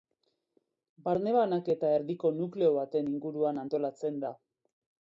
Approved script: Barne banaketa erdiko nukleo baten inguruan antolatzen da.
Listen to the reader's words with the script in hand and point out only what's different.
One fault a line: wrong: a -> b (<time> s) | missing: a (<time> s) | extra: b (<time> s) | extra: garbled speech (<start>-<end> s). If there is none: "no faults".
no faults